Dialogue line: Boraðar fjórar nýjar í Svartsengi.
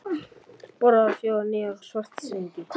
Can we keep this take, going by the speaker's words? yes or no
yes